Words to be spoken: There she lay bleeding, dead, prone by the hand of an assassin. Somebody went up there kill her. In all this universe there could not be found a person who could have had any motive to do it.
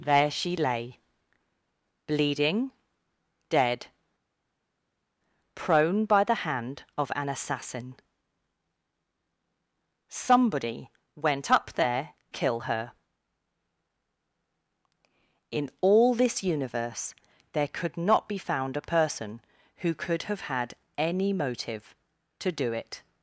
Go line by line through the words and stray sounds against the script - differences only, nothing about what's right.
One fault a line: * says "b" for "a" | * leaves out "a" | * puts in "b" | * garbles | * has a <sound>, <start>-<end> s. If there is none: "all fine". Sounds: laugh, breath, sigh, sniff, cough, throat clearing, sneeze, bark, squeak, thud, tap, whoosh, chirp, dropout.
all fine